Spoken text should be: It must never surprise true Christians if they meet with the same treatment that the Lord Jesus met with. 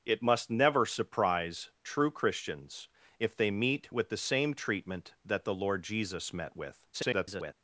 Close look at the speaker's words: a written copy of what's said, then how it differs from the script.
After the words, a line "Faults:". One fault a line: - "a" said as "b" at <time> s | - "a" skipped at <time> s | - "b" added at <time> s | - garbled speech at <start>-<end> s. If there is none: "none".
It must never surprise true Christians if they meet with the same treatment that the Lord Jesus met with. [garbled]
Faults:
- garbled speech at 6.9-7.5 s